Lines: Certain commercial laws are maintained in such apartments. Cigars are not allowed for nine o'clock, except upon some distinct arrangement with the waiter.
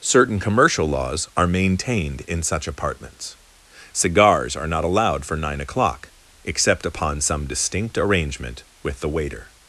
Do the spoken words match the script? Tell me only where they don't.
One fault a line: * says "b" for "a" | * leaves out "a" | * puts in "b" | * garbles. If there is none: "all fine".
all fine